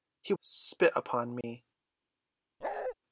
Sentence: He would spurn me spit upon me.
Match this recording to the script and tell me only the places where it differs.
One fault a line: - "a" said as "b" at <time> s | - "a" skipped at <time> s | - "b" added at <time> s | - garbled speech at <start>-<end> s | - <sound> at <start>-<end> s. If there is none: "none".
- "would spurn me" skipped at 0.3 s
- dropout at 1.4-1.4 s
- bark at 2.6-3.0 s